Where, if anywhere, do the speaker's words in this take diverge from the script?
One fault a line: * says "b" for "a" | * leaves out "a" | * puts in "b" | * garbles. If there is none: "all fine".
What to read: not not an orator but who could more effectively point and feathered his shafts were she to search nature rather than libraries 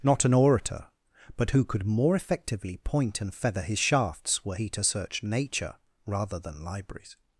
* leaves out "not"
* says "feather" for "feathered"
* says "he" for "she"